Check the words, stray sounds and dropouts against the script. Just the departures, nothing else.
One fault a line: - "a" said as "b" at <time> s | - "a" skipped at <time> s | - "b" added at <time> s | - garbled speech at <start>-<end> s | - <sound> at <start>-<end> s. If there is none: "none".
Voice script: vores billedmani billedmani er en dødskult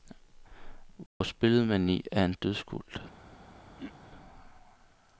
- dropout at 1.1-1.2 s
- "billedmani" skipped at 2.0 s
- throat clearing at 3.8-3.9 s